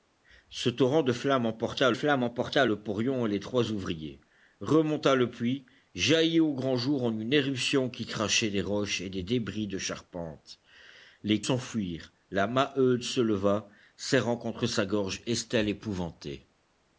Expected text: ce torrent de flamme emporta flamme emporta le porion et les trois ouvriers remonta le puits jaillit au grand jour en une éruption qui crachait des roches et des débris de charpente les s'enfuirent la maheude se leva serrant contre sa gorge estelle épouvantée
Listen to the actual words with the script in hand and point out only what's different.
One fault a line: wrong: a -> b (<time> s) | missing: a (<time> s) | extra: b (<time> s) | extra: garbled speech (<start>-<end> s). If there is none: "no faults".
no faults